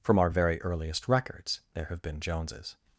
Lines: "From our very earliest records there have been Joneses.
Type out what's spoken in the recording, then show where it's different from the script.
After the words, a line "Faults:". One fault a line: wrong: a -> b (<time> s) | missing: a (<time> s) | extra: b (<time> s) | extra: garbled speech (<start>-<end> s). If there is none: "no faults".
"From our very earliest records there have been Joneses.
Faults:
no faults